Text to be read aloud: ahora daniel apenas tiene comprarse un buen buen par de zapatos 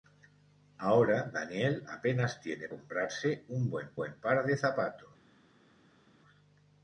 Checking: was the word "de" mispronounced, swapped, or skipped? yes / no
no